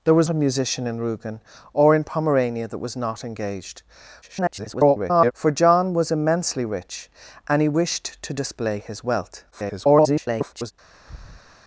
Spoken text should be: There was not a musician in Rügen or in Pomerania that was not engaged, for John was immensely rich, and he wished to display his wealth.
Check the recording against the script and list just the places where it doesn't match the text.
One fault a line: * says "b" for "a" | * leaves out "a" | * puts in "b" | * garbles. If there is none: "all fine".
* leaves out "not"
* garbles
* garbles